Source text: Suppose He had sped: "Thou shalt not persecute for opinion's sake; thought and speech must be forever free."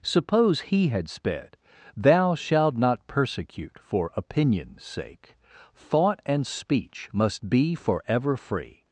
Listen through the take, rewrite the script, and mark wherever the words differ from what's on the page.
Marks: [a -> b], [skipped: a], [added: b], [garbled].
Suppose He had sped: "Thou shalt not persecute for opinion's sake; thought and speech must be forever free."